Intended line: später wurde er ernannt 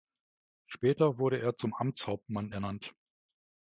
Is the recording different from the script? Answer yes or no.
yes